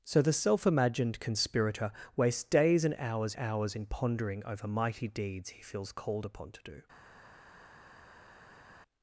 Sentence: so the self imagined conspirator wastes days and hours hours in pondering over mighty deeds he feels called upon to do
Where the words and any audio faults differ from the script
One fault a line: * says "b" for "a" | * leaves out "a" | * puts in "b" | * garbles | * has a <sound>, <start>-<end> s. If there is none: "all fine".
all fine